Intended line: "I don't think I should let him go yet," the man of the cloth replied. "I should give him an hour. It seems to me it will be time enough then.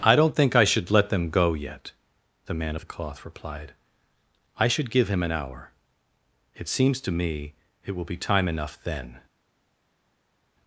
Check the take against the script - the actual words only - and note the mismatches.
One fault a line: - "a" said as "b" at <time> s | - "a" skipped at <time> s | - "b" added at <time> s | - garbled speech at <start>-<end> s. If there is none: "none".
- "him" said as "them" at 1.1 s